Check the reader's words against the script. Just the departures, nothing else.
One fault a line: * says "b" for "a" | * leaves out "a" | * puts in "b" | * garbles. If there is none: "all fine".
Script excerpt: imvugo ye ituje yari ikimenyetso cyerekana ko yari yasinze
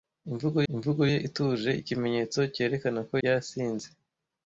* puts in "imvugo"
* leaves out "yari"
* leaves out "yari"